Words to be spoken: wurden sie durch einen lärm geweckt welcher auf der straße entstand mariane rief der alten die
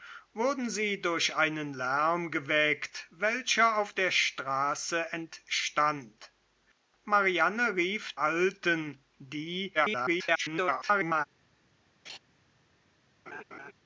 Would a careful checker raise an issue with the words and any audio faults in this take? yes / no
yes